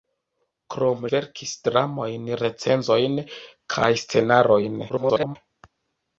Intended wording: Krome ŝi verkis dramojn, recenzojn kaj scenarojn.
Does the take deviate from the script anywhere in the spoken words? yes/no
yes